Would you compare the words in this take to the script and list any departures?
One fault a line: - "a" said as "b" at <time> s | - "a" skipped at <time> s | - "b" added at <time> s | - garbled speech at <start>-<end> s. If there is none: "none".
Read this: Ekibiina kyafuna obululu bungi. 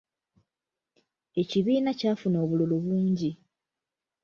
none